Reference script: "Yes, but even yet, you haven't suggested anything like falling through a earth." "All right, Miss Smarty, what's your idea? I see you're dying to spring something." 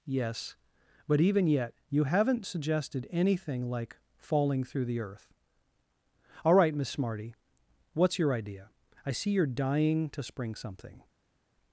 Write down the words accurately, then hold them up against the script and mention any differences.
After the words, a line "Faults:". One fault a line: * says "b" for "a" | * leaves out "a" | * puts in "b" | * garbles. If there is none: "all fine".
"Yes, but even yet, you haven't suggested anything like falling through the earth." "All right, Miss Smarty, what's your idea? I see you're dying to spring something."
Faults:
* says "the" for "a"